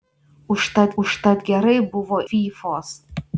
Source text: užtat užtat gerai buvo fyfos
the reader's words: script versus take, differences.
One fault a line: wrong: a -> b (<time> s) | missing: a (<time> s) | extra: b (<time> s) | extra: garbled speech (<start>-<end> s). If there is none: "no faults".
no faults